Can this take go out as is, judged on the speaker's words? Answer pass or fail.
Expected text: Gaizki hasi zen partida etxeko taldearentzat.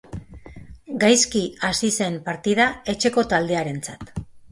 pass